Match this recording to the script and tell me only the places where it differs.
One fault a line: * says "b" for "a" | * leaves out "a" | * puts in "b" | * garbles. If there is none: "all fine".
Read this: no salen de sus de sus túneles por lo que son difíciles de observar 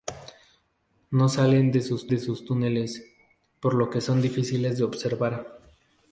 all fine